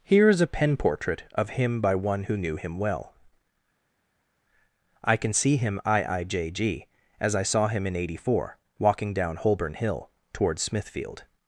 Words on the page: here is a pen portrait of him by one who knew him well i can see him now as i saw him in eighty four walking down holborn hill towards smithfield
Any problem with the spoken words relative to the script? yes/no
yes